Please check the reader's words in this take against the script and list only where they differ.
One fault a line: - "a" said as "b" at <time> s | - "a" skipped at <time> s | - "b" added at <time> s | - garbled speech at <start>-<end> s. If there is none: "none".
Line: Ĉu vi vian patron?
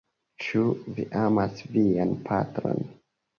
- "amas" added at 1.2 s